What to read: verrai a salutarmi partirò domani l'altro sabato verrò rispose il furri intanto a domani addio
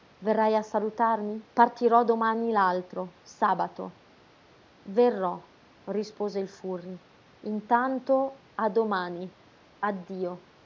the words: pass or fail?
pass